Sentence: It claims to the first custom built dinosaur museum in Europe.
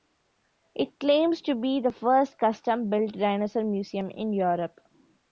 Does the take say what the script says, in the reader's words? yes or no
no